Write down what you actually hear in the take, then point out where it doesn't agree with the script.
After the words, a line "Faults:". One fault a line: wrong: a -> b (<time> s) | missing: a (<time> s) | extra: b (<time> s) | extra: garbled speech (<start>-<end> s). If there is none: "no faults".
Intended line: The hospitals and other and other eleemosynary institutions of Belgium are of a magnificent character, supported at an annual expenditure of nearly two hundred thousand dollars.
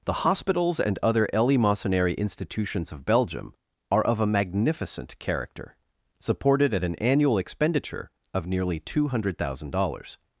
The hospitals and other eleemosynary institutions of Belgium are of a magnificent character, supported at an annual expenditure of nearly two hundred thousand dollars.
Faults:
missing: and other (1.3 s)